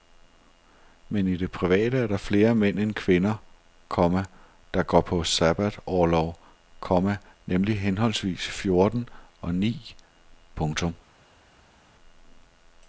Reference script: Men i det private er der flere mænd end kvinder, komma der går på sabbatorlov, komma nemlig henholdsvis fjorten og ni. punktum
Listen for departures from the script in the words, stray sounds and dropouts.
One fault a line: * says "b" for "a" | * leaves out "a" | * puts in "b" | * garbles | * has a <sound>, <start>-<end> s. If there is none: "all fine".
all fine